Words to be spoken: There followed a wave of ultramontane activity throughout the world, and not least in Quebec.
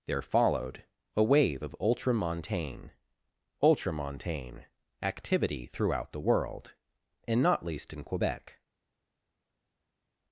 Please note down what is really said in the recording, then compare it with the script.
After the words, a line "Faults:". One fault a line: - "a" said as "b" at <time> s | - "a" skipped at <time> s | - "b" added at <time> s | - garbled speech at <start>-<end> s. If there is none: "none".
There followed a wave of ultramontane ultramontane activity throughout the world, and not least in Quebec.
Faults:
- "ultramontane" added at 3.6 s